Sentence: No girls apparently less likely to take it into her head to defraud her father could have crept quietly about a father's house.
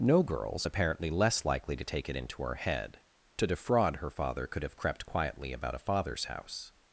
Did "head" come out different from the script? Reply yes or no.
no